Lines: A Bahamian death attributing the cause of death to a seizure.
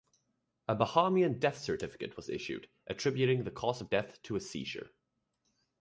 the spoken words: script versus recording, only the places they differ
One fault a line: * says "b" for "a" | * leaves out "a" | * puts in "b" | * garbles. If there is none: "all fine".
* puts in "certificate was issued"